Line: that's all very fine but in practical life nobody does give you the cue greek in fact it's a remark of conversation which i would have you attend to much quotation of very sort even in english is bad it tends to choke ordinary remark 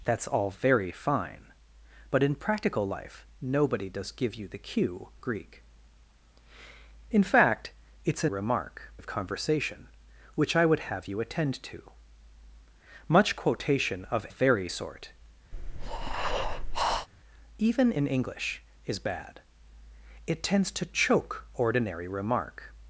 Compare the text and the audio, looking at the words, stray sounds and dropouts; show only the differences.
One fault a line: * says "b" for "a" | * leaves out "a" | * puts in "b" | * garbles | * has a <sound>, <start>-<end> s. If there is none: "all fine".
* has a breath, 15.5-17.1 s